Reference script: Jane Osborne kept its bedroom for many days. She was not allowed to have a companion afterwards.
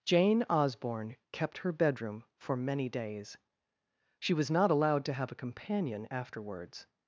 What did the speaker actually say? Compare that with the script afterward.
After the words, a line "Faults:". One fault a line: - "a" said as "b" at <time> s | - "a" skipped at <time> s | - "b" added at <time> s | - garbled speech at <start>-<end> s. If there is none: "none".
Jane Osborne kept her bedroom for many days. She was not allowed to have a companion afterwards.
Faults:
- "its" said as "her" at 1.6 s